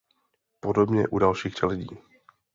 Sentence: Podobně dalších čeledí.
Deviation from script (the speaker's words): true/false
true